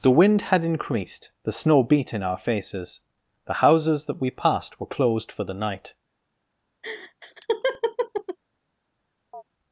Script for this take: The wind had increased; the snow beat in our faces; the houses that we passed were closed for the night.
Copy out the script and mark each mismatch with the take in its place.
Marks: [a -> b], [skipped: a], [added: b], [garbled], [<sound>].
The wind had increased; the snow beat in our faces; the houses that we passed were closed for the night. [laugh] [chirp]